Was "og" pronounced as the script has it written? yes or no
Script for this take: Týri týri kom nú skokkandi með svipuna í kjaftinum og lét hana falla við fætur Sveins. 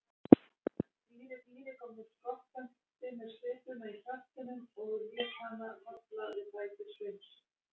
yes